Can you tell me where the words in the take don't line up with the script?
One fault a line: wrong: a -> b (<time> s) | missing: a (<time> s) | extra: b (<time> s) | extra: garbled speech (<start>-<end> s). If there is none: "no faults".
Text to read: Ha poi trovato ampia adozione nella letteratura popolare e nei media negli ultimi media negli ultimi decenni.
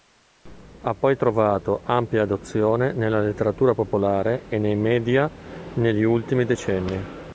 missing: media negli ultimi (6.4 s)